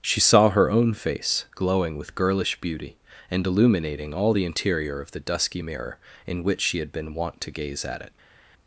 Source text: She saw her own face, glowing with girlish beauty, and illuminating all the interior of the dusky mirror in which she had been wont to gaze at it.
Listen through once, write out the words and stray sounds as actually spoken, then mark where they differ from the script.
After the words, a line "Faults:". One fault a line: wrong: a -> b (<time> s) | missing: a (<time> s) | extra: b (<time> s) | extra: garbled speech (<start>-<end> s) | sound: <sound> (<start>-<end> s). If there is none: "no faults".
She saw her own face, glowing with girlish beauty, and illuminating all the interior of the dusky mirror in which she had been wont to gaze at it.
Faults:
no faults